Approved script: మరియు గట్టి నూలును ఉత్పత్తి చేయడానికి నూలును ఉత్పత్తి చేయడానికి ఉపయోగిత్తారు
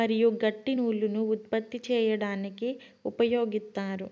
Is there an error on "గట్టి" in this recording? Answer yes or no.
no